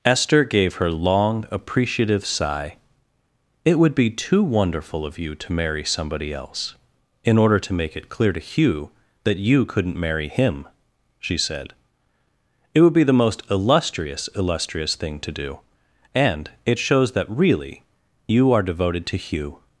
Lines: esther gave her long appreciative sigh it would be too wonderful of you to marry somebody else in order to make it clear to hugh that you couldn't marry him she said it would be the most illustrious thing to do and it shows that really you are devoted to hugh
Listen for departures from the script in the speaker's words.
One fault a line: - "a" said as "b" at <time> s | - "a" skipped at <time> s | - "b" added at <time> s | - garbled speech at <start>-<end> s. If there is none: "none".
- "illustrious" added at 14.3 s